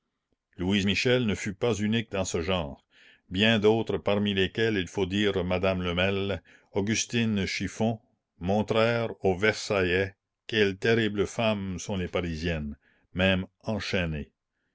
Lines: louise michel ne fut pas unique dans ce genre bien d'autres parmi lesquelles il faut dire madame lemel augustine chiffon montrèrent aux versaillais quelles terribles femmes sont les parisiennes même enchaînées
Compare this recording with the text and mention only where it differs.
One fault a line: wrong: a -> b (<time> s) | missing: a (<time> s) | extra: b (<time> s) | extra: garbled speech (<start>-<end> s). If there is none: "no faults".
no faults